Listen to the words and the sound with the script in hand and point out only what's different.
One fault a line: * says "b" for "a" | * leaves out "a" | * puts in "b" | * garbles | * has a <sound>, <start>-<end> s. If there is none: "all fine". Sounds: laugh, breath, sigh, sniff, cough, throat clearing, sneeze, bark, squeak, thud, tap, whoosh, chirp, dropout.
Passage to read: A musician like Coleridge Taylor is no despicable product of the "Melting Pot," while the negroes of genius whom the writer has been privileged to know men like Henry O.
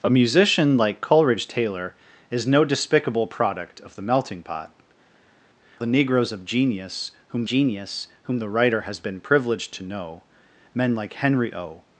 * leaves out "while"
* puts in "genius whom"